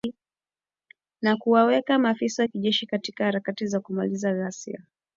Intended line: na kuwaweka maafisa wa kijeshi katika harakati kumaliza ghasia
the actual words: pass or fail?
fail